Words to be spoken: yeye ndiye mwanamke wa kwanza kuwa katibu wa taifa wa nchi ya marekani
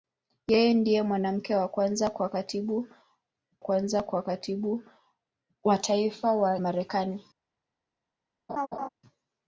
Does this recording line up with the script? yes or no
no